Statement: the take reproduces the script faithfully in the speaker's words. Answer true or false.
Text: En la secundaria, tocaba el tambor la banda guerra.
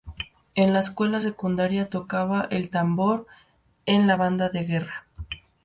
false